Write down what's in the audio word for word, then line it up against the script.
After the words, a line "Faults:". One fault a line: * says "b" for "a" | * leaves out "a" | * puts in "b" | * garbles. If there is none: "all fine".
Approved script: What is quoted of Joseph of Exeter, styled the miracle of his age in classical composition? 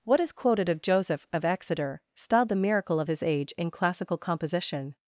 What is quoted of Joseph of Exeter, styled the miracle of his age in classical composition?
Faults:
all fine